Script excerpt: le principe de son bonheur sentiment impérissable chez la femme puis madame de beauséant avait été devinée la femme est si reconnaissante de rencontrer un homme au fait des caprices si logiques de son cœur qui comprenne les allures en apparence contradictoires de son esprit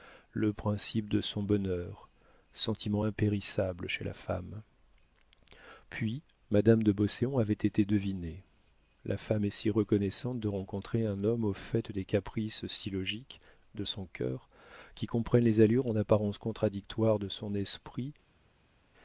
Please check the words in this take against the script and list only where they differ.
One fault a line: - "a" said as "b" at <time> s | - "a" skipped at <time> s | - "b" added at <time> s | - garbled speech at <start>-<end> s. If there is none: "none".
none